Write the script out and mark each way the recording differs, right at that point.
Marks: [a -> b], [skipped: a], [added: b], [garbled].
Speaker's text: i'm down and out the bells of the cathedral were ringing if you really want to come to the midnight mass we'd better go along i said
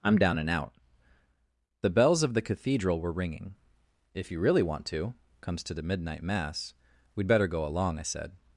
i'm down and out the bells of the cathedral were ringing if you really want to [come -> comes] to the midnight mass we'd better go along i said